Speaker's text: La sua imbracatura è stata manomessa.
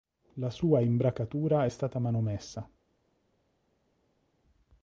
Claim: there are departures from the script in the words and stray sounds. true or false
false